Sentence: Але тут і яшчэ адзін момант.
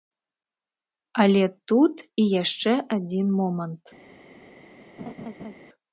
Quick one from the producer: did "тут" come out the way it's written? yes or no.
yes